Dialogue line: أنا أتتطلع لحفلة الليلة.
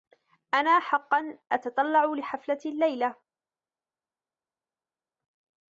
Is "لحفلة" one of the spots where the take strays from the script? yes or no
no